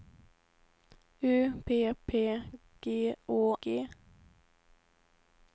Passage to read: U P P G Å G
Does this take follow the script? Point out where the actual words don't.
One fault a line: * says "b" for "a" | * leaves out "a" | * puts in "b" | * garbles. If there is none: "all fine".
all fine